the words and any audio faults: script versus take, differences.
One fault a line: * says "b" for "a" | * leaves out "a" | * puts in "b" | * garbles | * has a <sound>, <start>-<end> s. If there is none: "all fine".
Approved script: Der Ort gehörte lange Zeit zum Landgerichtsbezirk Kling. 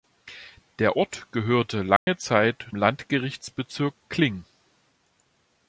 * has a dropout, 2.0-2.1 s
* leaves out "zum"